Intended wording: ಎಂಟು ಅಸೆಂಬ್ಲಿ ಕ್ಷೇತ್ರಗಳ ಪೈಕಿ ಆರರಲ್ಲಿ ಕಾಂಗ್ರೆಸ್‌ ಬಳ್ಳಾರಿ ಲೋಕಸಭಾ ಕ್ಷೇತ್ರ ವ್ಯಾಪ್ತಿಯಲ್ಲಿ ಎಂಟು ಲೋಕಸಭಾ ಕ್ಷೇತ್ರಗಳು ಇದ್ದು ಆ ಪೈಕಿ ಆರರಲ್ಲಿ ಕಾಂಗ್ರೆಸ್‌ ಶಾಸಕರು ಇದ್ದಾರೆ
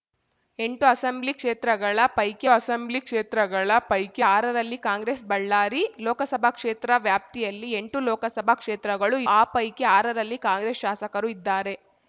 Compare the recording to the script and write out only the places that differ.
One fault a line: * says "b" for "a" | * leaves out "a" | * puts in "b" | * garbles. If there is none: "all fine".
* puts in "ಅಸೆಂಬ್ಲಿ ಕ್ಷೇತ್ರಗಳ ಪೈಕಿ"
* leaves out "ಇದ್ದು"